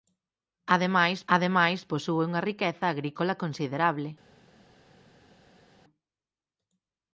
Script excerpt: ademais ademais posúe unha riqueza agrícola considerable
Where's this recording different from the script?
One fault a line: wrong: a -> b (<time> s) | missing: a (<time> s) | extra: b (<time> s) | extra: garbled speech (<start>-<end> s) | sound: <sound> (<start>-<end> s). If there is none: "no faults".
no faults